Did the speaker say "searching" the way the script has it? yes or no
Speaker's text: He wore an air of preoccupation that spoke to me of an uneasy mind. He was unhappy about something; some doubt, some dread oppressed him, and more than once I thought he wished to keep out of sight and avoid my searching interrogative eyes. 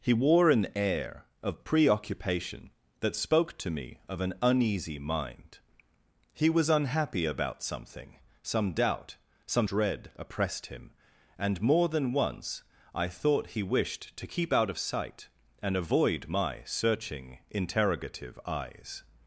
yes